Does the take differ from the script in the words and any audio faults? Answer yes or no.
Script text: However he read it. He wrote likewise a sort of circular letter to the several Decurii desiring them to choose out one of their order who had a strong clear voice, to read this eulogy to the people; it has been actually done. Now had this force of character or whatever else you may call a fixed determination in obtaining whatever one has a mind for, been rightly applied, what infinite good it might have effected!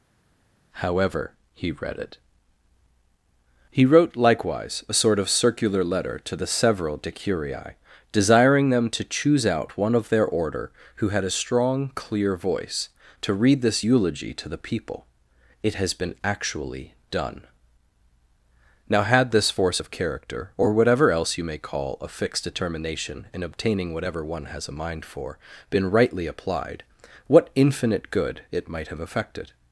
no